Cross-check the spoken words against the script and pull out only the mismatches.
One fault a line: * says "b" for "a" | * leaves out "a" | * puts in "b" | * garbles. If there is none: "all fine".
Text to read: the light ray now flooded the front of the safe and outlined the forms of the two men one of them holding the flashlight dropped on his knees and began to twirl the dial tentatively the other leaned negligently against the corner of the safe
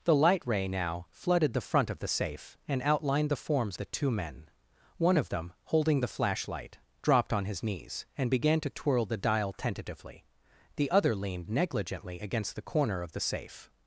* leaves out "of"